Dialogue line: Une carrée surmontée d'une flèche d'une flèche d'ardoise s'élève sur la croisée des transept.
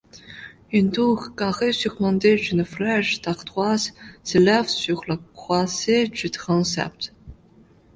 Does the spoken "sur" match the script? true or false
true